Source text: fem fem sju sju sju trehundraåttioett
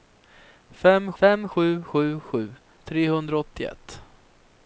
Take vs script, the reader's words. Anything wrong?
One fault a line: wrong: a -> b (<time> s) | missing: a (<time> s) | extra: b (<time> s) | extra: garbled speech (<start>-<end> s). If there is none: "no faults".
no faults